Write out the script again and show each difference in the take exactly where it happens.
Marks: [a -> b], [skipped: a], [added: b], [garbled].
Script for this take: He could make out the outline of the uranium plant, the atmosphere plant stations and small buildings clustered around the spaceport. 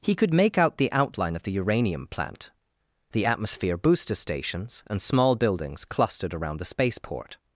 He could make out the outline of the uranium plant, the atmosphere [plant -> booster] stations and small buildings clustered around the spaceport.